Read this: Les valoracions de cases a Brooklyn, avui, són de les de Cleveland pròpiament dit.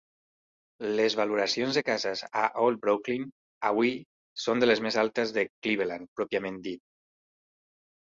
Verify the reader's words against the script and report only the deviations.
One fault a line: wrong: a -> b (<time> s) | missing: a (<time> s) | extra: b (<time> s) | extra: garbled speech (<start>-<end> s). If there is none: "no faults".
extra: Old (2.7 s)
extra: més altes (4.9 s)